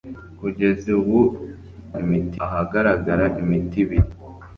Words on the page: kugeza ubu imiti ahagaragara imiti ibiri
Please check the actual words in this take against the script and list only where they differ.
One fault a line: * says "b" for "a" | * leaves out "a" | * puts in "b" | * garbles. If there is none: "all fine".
all fine